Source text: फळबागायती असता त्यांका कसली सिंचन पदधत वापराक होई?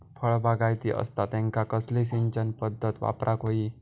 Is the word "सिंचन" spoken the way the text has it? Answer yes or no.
yes